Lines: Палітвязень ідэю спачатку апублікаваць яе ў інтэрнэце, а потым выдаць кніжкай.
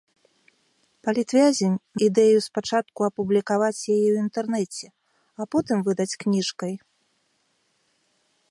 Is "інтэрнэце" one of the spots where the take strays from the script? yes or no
no